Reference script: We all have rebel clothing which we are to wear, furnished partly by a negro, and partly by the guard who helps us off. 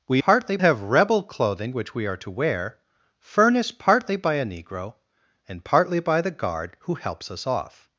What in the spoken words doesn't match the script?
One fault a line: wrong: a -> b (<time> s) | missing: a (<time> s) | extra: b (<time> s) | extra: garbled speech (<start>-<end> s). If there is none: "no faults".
wrong: all -> partly (0.2 s)